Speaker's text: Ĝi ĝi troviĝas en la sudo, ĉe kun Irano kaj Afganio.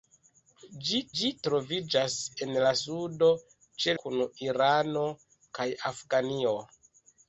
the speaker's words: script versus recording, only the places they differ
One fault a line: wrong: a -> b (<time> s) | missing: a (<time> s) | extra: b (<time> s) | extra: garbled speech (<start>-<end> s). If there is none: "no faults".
no faults